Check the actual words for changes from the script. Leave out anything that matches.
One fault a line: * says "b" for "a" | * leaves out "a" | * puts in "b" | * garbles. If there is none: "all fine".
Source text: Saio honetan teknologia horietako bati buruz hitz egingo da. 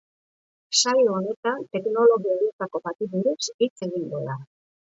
all fine